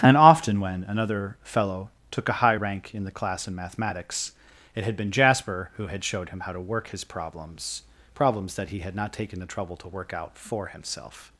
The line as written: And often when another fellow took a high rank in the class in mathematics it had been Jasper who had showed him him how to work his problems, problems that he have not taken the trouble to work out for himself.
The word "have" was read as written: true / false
false